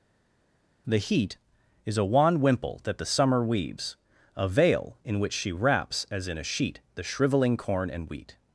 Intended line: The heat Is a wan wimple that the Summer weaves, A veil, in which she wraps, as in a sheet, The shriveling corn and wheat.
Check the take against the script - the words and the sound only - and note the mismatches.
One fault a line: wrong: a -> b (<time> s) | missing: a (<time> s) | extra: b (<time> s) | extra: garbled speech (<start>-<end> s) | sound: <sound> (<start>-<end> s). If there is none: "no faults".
no faults